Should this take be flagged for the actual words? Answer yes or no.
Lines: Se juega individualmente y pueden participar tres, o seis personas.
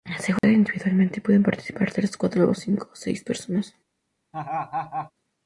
yes